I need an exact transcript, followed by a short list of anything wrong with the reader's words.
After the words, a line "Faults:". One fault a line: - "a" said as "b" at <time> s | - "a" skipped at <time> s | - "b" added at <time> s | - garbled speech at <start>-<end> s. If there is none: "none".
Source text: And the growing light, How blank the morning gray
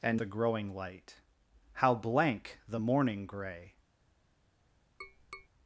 And the growing light, How blank the morning gray
Faults:
none